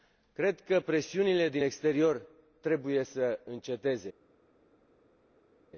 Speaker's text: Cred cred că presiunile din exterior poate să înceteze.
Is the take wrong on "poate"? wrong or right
wrong